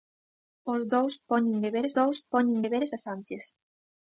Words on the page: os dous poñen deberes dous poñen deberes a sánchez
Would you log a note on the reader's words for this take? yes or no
no